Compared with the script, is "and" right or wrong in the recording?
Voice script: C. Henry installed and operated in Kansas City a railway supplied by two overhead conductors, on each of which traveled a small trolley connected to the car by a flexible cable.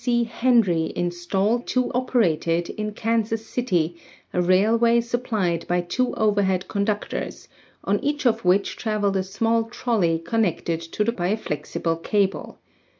wrong